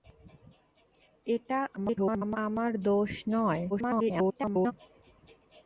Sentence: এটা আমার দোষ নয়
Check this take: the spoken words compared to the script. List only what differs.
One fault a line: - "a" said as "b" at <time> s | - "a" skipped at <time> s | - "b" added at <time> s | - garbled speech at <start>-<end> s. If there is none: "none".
- garbled speech at 1.8-2.4 s
- garbled speech at 3.7-4.7 s